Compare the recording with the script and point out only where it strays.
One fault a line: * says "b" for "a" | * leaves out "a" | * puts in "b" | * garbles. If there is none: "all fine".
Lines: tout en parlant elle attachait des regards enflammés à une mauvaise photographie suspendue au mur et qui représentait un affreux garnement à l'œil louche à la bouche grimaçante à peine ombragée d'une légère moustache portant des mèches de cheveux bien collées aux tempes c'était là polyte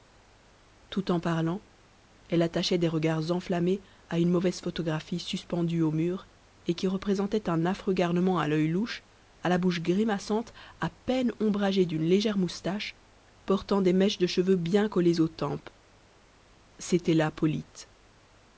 all fine